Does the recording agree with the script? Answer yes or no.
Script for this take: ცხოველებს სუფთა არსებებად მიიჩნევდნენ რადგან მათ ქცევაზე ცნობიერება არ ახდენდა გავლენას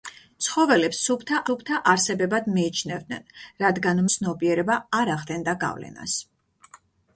no